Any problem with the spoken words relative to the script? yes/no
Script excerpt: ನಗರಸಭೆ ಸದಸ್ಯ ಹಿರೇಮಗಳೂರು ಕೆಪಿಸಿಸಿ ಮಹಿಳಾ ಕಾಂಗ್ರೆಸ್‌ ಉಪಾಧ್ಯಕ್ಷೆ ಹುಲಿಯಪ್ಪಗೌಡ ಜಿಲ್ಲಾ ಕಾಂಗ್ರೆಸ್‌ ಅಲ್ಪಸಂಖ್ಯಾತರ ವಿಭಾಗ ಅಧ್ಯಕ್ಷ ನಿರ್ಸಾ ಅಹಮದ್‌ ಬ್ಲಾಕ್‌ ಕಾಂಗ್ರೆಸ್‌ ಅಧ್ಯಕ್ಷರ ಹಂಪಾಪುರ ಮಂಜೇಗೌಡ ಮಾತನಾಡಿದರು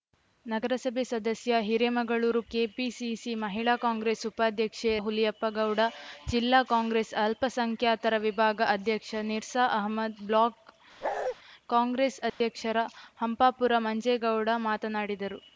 no